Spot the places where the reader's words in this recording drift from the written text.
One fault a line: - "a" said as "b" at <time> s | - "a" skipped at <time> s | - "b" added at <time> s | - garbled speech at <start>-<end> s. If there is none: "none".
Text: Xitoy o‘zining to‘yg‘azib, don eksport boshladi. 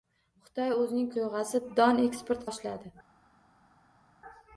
none